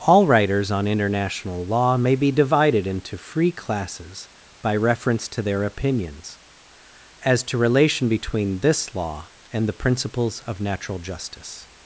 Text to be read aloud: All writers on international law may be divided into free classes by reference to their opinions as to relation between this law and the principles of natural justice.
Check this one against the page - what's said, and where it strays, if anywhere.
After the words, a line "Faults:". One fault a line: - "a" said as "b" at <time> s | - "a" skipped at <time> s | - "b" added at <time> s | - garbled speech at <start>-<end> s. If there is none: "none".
All writers on international law may be divided into free classes by reference to their opinions as to relation between this law and the principles of natural justice.
Faults:
none